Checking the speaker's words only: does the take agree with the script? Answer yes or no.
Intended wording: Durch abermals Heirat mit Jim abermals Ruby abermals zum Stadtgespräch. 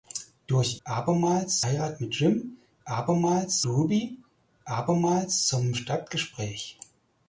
yes